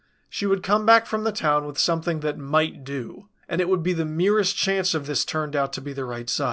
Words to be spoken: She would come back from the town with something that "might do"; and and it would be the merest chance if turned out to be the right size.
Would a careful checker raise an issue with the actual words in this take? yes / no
yes